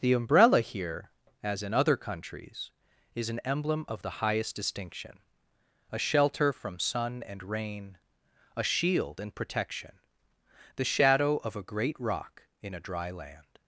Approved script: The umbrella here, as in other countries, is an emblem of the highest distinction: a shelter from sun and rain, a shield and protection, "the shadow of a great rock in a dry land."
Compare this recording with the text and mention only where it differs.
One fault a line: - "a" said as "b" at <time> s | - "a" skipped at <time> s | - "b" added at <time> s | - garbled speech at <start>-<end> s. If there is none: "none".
none